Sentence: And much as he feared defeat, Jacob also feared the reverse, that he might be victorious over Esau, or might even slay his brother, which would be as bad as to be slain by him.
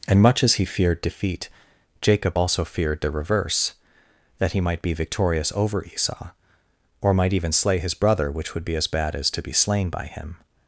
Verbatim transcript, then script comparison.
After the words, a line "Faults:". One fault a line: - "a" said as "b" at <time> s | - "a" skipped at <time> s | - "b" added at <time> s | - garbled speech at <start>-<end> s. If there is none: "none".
And much as he feared defeat, Jacob also feared the reverse, that he might be victorious over Esau, or might even slay his brother, which would be as bad as to be slain by him.
Faults:
none